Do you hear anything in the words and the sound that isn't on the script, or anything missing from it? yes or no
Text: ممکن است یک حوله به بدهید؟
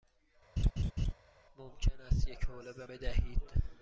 yes